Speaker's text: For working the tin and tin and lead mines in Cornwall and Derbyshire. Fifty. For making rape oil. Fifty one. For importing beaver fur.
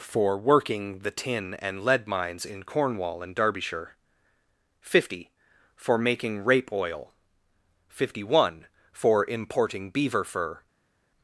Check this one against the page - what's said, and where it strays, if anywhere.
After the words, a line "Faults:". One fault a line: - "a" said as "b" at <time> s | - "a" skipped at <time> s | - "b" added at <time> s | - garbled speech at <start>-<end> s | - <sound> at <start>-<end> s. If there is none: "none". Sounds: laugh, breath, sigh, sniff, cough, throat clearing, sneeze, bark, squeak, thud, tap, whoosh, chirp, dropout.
For working the tin and lead mines in Cornwall and Derbyshire. Fifty. For making rape oil. Fifty one. For importing beaver fur.
Faults:
- "tin and" skipped at 1.9 s